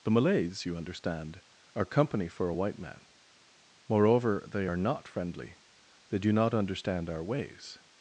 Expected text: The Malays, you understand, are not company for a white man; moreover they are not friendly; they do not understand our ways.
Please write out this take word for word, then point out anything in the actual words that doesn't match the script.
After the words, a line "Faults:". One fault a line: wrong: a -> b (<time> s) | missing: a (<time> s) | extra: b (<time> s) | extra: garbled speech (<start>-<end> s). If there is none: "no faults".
The Malays, you understand, are company for a white man; moreover they are not friendly; they do not understand our ways.
Faults:
missing: not (1.9 s)